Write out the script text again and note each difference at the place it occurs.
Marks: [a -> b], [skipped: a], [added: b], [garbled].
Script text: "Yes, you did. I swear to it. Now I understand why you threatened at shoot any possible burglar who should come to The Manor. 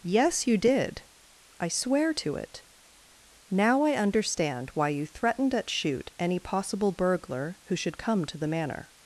"Yes, you did. I swear to it. Now I understand why you threatened at shoot any possible burglar who should come to The Manor.